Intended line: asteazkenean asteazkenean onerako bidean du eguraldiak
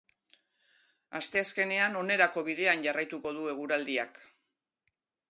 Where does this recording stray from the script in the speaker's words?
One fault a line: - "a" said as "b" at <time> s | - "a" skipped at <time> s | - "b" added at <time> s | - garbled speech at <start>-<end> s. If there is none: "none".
- "asteazkenean" skipped at 2.0 s
- "jarraituko" added at 2.9 s